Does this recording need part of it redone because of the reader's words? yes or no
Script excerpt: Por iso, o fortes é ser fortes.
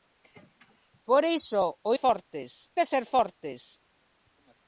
no